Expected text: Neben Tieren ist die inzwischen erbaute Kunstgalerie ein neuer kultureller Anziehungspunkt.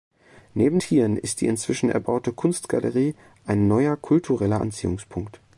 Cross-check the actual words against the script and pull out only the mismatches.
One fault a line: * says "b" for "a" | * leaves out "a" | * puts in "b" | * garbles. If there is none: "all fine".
all fine